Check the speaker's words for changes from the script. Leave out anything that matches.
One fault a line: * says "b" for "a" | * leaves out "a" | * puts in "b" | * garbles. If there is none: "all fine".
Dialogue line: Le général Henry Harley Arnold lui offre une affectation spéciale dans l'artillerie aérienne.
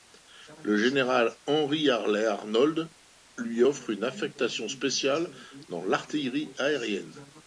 all fine